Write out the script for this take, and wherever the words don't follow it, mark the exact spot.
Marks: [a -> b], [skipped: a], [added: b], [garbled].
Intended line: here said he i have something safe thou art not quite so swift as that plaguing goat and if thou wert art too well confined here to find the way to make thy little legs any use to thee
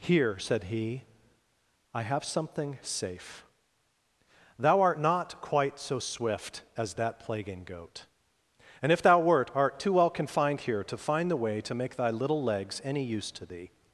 here said he i have something safe thou art not quite so swift as that plaguing goat and if thou wert art too well confined here to find the way to make thy little legs any use to thee